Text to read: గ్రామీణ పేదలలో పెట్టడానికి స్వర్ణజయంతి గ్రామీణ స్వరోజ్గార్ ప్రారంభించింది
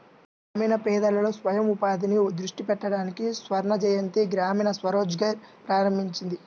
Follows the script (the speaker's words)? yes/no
no